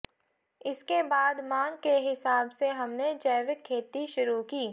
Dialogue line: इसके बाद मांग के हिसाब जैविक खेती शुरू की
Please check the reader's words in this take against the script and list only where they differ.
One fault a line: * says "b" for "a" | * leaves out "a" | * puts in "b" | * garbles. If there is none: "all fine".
* puts in "से हमने"